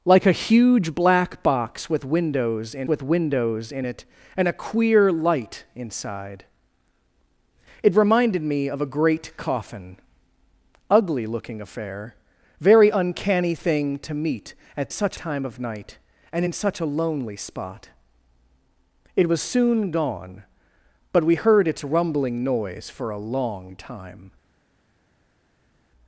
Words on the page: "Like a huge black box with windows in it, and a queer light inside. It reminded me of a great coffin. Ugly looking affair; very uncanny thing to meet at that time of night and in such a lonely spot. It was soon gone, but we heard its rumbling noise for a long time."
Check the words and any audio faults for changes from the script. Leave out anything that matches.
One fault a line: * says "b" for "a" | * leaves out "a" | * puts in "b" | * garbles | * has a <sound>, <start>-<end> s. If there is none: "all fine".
* puts in "with windows in"
* says "such" for "that"